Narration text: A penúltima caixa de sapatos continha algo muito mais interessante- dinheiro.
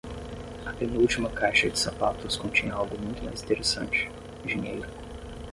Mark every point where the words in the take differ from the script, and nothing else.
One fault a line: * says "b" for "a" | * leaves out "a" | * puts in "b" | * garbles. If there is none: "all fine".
all fine